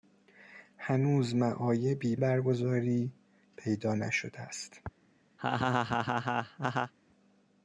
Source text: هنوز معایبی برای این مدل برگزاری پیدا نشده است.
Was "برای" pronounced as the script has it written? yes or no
no